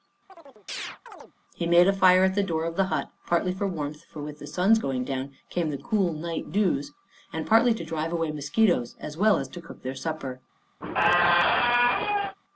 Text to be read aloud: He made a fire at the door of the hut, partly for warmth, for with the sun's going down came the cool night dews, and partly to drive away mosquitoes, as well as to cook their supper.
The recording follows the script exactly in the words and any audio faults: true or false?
false